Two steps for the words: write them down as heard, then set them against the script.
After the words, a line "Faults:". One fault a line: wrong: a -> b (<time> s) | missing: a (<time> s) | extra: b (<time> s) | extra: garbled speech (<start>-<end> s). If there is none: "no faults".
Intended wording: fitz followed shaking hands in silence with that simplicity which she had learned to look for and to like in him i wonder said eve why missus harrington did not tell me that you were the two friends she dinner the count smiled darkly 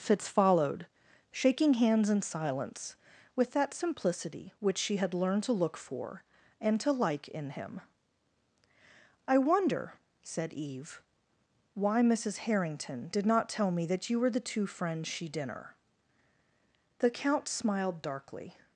fitz followed shaking hands in silence with that simplicity which she had learned to look for and to like in him i wonder said eve why missus harrington did not tell me that you were the two friends she dinner the count smiled darkly
Faults:
no faults